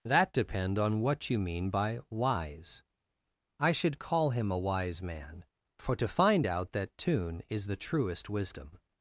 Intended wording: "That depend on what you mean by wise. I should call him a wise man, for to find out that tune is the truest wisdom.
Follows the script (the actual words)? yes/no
yes